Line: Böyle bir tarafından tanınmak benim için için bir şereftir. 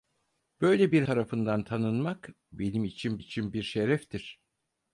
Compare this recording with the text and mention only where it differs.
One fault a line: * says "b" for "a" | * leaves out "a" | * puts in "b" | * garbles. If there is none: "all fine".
all fine